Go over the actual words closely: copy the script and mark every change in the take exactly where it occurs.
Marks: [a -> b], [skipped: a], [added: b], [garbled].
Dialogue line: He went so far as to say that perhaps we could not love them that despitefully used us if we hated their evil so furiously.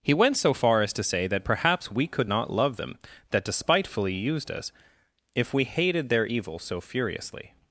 He went so far as to say that perhaps we could not love them that despitefully used us if we hated their evil so furiously.